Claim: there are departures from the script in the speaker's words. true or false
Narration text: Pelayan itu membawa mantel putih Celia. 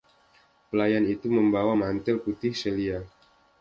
false